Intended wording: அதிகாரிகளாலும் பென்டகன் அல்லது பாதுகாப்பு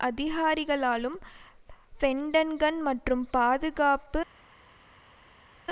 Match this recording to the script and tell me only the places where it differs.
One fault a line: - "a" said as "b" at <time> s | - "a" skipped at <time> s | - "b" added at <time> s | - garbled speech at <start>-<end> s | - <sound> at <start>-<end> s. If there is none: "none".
- "அல்லது" said as "மற்றும்" at 2.8 s